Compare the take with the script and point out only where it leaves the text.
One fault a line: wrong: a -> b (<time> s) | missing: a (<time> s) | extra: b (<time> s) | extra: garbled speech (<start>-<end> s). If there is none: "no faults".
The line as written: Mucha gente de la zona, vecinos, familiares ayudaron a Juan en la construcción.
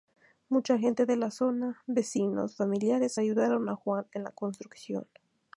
no faults